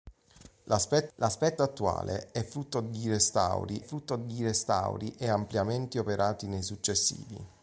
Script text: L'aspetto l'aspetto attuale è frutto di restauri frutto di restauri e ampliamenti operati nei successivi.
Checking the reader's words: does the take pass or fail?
pass